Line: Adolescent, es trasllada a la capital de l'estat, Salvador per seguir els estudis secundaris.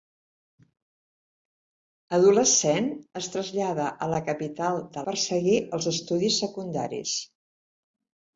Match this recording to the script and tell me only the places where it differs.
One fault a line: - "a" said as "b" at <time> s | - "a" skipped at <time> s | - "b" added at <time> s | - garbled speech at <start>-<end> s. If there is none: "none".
- "l'estat Salvador" skipped at 5.0 s